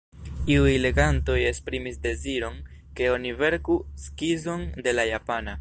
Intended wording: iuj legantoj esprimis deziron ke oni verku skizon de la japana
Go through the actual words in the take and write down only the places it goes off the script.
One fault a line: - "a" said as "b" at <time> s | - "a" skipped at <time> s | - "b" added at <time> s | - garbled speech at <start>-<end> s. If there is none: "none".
none